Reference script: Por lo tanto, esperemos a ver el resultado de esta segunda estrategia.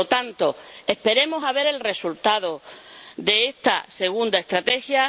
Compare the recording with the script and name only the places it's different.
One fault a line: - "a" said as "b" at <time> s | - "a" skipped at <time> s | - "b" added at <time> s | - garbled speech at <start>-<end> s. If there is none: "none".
none